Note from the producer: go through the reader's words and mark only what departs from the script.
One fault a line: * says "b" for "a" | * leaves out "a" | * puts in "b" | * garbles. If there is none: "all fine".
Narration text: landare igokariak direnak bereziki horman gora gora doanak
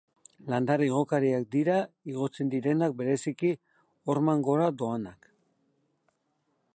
* puts in "dira igotzen"
* leaves out "gora"